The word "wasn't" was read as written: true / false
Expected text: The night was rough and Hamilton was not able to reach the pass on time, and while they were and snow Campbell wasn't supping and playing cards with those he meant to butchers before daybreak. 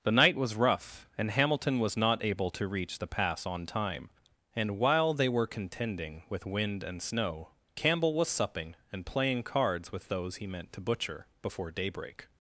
false